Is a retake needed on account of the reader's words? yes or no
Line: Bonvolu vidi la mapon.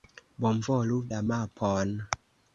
yes